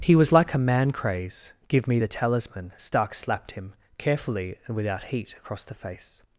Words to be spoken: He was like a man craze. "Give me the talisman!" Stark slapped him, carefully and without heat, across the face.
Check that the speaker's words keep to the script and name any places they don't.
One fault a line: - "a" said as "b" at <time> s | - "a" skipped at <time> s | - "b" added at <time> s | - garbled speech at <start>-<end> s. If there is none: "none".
none